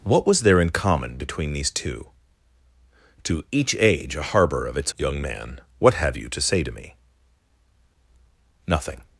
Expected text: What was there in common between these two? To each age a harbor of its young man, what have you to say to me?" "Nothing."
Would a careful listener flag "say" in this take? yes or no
no